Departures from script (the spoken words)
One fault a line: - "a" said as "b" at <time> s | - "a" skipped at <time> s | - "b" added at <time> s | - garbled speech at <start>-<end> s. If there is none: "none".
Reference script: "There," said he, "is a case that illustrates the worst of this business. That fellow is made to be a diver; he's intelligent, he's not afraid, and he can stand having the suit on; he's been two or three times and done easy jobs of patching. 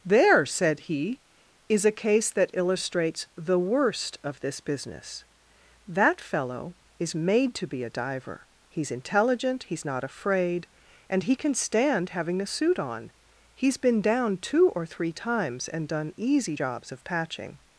- "down" added at 14.0 s